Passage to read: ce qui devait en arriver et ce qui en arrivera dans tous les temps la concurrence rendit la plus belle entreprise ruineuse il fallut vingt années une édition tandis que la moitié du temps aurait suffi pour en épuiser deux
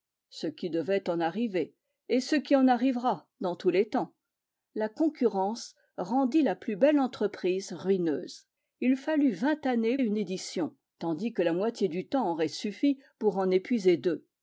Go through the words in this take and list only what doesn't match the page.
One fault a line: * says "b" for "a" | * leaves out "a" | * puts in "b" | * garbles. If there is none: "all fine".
all fine